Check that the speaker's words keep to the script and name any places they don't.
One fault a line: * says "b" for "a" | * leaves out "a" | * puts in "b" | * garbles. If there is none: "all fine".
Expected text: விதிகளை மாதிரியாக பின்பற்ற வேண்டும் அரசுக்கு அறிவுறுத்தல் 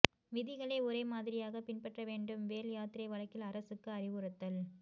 * puts in "ஒரே"
* puts in "வேல் யாத்திரை வழக்கில்"